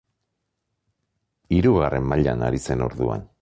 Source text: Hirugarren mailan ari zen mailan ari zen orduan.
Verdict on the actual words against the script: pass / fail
fail